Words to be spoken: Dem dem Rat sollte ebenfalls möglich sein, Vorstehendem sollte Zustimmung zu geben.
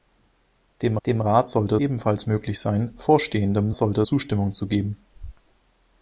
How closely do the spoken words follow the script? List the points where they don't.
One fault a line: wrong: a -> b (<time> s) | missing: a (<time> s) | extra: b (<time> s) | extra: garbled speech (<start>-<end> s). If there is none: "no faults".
no faults